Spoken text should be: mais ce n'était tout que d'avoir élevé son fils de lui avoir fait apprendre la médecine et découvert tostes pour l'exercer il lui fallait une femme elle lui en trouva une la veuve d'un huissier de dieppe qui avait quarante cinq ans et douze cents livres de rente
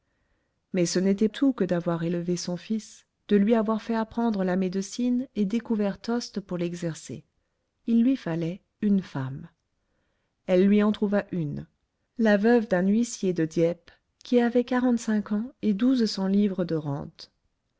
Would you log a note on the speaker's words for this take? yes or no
no